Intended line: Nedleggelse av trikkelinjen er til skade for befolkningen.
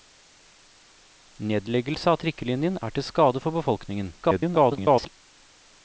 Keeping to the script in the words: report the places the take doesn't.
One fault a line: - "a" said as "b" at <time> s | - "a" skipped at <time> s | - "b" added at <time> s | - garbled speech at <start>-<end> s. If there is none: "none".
- garbled speech at 4.2-5.1 s